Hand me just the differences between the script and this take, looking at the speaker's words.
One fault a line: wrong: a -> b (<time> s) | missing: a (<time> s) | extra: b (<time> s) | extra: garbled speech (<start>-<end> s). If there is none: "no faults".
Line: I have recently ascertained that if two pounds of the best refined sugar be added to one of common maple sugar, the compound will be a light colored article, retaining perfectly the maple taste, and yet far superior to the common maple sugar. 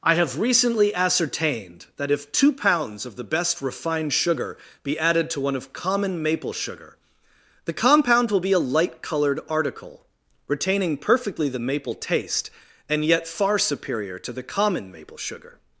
no faults